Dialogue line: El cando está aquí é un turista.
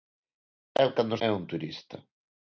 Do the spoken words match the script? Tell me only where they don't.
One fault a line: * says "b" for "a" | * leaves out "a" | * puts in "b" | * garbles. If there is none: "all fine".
* leaves out "está aquí"